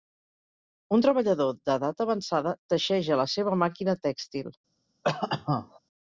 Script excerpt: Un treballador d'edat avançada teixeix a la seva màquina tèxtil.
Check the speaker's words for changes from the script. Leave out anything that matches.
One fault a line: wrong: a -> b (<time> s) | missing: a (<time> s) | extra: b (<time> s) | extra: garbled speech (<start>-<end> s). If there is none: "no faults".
no faults